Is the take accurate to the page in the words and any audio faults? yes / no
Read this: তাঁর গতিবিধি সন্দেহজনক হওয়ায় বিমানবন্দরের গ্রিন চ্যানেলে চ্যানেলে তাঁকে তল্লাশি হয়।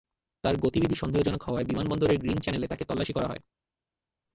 no